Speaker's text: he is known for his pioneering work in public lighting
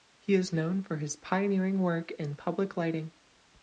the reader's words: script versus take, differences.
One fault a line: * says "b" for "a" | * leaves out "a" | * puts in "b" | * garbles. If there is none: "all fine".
all fine